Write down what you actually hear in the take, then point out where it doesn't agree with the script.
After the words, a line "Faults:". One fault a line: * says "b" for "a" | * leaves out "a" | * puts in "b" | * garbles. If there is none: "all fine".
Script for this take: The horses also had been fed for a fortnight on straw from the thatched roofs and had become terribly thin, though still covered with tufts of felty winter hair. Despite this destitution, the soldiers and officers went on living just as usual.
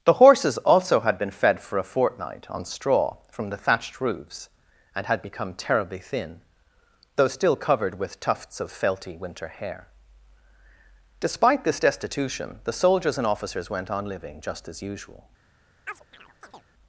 The horses also had been fed for a fortnight on straw from the thatched roofs and had become terribly thin, though still covered with tufts of felty winter hair. Despite this destitution, the soldiers and officers went on living just as usual.
Faults:
all fine